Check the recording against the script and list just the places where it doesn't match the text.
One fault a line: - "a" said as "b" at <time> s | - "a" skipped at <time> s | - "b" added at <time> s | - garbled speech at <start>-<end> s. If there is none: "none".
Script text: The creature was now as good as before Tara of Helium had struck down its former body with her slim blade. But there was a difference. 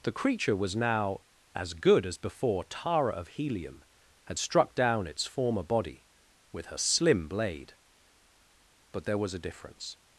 none